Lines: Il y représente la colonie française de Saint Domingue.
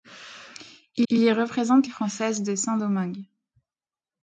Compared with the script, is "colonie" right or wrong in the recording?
wrong